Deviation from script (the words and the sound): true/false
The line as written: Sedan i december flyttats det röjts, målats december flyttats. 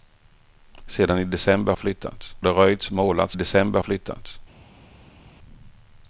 false